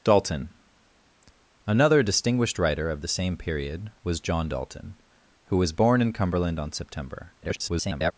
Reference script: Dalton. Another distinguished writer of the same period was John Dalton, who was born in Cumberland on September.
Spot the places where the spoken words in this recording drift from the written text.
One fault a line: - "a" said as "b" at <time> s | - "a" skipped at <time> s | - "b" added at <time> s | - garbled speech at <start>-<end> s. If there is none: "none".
- garbled speech at 7.4-8.1 s